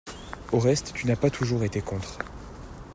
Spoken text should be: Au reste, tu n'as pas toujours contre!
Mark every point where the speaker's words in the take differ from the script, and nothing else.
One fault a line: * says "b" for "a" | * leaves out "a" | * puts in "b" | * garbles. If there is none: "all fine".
* puts in "été"